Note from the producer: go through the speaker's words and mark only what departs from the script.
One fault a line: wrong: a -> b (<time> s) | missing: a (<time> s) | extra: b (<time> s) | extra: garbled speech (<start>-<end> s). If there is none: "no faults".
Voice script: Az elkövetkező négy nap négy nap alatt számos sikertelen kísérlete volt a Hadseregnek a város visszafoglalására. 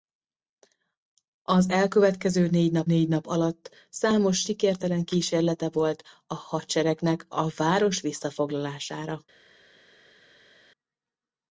no faults